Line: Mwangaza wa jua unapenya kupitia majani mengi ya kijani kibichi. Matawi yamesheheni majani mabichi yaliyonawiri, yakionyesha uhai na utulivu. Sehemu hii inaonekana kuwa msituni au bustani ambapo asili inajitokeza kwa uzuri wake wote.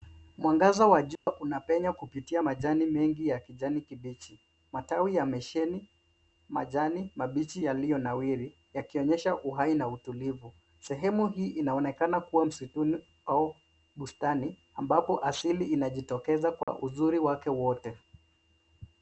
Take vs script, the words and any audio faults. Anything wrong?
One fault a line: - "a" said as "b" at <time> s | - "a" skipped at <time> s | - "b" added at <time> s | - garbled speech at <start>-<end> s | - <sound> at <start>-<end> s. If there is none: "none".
- dropout at 1.2-1.3 s
- dropout at 16.6-16.7 s